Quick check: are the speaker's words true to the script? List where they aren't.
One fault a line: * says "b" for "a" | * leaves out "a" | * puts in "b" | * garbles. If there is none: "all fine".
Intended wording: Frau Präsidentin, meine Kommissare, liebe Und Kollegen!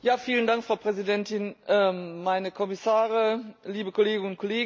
* puts in "Kolleginnen"